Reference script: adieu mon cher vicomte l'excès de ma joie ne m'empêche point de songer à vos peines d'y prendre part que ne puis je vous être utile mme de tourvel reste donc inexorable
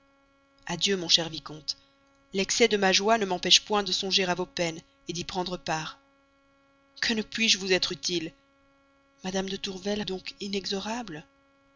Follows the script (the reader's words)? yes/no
no